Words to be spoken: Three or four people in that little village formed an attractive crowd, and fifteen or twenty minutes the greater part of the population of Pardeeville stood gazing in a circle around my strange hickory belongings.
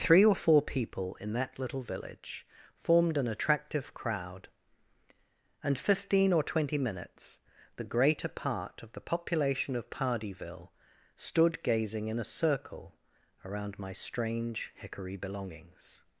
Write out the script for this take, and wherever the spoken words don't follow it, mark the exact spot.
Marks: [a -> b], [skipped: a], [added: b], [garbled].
Three or four people in that little village formed an attractive crowd, and fifteen or twenty minutes the greater part of the population of Pardeeville stood gazing in a circle around my strange hickory belongings.